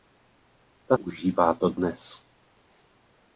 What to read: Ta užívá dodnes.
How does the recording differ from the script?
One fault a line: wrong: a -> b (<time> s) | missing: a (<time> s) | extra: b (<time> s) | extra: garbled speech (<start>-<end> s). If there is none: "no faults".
no faults